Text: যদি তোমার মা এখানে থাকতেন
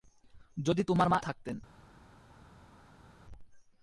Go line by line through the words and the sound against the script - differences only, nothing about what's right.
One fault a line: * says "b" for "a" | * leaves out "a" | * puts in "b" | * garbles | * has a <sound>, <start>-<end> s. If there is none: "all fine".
* leaves out "এখানে"